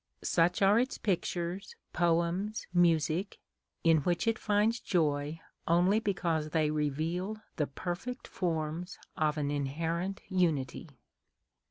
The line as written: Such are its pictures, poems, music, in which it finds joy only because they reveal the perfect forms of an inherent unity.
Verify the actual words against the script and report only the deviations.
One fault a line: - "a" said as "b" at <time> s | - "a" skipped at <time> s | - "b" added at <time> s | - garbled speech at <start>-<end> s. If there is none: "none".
none